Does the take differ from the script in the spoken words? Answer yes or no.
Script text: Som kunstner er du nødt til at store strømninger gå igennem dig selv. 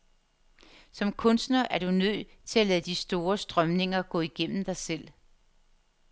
yes